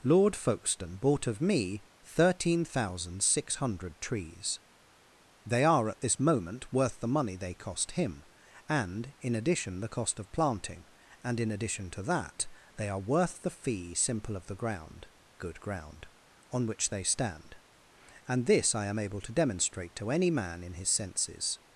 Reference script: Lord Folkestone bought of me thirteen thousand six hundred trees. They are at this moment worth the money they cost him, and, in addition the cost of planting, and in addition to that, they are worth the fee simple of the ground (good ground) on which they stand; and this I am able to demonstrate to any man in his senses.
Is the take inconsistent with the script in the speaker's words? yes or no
no